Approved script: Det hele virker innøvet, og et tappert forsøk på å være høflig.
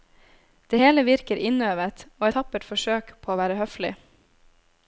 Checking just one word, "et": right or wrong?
wrong